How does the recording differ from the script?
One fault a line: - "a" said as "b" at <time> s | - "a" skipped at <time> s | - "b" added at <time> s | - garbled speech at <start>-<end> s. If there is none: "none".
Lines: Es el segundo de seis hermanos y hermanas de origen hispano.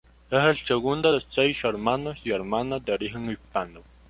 none